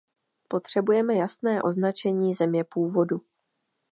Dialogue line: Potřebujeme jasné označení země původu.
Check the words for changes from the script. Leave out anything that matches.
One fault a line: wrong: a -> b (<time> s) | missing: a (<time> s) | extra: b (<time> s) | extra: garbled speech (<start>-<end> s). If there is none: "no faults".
no faults